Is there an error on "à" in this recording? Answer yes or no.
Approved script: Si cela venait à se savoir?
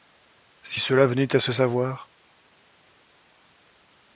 no